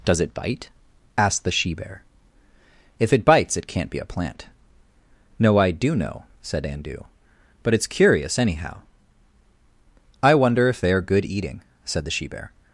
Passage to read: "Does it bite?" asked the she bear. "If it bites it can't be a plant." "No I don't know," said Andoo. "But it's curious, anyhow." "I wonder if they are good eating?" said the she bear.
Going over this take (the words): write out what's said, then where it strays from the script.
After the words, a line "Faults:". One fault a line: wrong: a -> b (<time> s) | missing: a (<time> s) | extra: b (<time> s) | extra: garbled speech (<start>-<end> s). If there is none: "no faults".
"Does it bite?" asked the she bear. "If it bites it can't be a plant." "No I do know," said Andoo. "But it's curious, anyhow." "I wonder if they are good eating?" said the she bear.
Faults:
wrong: don't -> do (5.7 s)